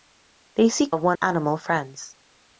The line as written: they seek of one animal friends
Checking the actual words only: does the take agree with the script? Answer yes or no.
yes